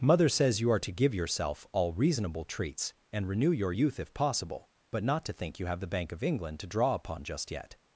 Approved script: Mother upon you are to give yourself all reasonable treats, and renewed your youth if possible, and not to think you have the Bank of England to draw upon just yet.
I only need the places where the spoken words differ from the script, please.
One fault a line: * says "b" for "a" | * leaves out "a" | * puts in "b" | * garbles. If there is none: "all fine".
* says "says" for "upon"
* says "renew" for "renewed"
* says "but" for "and"